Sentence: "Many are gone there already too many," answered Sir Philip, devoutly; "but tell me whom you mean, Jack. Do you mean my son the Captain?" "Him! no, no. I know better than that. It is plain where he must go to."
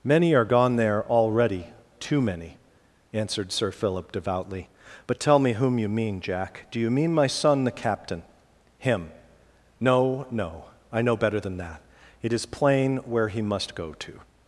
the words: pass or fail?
pass